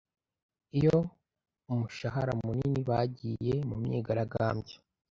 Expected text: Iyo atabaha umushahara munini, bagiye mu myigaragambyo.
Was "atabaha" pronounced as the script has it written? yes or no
no